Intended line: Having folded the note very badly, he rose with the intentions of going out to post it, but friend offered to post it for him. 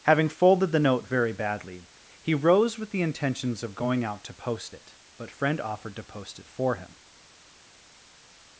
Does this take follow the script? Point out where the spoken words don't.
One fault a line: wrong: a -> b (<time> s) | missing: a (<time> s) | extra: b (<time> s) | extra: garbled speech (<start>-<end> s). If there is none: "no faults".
no faults